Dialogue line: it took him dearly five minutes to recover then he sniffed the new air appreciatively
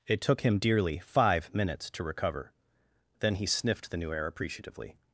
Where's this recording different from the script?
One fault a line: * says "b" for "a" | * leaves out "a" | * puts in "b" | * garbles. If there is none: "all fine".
all fine